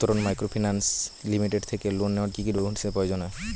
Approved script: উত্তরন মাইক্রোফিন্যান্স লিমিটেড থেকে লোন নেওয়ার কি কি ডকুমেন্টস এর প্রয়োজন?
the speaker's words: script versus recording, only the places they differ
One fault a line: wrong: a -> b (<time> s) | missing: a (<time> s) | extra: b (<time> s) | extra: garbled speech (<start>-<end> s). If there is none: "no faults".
no faults